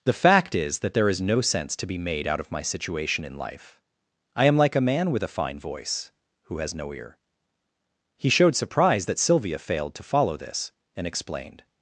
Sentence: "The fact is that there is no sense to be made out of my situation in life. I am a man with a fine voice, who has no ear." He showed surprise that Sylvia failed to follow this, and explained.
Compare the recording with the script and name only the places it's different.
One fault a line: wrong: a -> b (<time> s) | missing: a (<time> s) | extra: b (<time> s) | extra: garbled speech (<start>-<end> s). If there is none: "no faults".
extra: like (4.6 s)